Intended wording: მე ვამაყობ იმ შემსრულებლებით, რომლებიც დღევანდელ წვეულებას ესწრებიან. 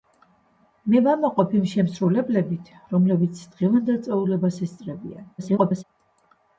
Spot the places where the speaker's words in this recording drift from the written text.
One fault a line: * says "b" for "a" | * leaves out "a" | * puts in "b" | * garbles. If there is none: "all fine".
* garbles